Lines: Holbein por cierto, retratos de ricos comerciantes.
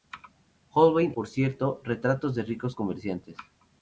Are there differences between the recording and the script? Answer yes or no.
no